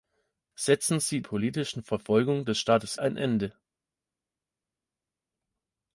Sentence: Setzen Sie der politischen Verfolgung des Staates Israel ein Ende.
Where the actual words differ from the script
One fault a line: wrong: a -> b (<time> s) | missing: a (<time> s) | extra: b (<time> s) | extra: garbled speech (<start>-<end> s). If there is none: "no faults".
missing: der (1.2 s)
missing: Israel (3.0 s)